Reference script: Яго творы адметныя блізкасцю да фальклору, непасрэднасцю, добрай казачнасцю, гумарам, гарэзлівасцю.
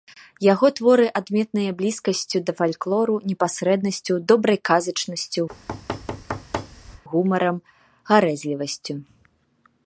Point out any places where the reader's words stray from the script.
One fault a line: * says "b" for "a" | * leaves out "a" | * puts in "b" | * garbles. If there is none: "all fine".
all fine